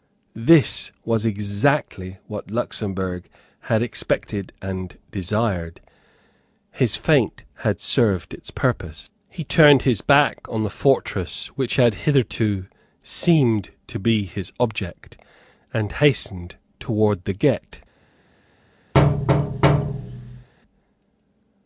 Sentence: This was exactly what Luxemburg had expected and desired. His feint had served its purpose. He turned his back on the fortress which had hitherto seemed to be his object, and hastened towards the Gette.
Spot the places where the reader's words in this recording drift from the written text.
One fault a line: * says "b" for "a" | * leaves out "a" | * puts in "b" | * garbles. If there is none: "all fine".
all fine